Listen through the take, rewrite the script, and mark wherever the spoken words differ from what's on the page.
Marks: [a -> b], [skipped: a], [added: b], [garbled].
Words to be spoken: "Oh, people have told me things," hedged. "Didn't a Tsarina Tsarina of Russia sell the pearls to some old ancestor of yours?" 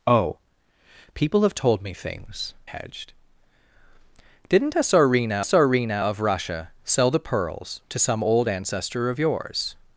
"Oh, people have told me things," hedged. "Didn't a Tsarina Tsarina of Russia sell the pearls to some old ancestor of yours?"